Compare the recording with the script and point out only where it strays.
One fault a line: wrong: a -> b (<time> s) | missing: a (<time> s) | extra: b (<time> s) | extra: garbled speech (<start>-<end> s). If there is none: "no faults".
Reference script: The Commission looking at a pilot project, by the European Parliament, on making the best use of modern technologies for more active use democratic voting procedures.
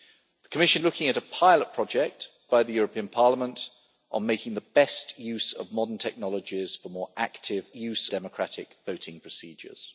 no faults